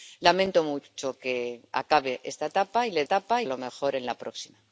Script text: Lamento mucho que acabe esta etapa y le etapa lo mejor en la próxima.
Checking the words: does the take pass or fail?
pass